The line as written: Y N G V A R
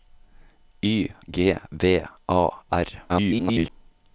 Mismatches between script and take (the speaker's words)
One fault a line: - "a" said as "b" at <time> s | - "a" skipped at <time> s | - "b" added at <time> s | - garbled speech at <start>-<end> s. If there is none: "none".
- "N" skipped at 1.1 s
- garbled speech at 3.1-3.7 s